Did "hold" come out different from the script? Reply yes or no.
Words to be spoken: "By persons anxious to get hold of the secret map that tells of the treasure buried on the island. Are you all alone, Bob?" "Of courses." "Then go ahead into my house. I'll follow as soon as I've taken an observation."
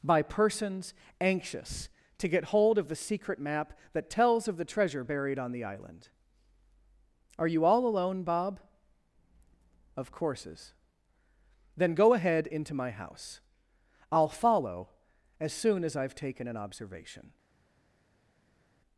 no